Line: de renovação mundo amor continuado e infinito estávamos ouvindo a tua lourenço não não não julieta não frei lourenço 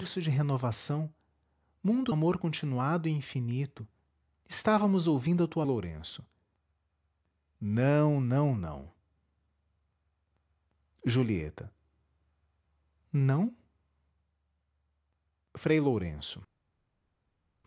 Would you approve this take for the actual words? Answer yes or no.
yes